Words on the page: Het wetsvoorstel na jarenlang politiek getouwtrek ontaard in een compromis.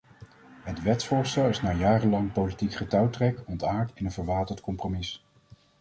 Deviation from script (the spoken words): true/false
true